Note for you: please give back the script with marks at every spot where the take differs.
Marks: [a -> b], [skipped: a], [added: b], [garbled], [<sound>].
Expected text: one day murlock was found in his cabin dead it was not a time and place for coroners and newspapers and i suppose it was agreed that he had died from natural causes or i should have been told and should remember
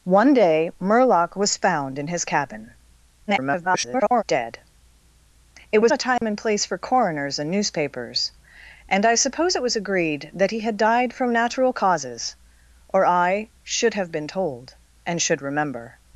one day murlock was found in his cabin [garbled] dead it was [skipped: not] a time [dropout] and place for coroners and newspapers and i suppose it was agreed that he had died from natural causes or i should have been told and should remember